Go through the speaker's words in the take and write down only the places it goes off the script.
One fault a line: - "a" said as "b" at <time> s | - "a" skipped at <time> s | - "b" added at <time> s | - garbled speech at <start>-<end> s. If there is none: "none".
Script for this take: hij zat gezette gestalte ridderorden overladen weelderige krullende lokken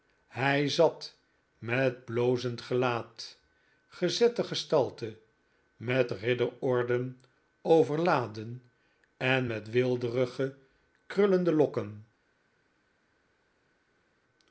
- "met blozend gelaat" added at 1.6 s
- "met" added at 5.8 s
- "en met" added at 9.2 s